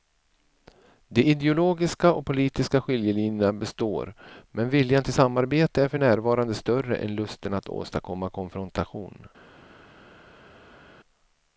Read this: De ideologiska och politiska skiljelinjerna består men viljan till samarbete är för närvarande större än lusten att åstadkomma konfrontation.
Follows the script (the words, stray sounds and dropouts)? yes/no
yes